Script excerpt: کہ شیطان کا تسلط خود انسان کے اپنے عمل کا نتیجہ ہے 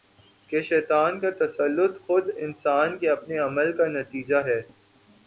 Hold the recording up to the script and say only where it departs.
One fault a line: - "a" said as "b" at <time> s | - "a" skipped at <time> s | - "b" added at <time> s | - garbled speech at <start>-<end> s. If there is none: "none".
none